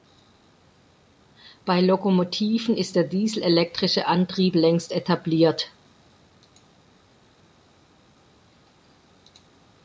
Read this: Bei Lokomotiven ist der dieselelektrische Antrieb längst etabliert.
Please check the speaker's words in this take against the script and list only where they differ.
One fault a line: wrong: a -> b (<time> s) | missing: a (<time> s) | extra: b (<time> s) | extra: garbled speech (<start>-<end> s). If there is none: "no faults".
no faults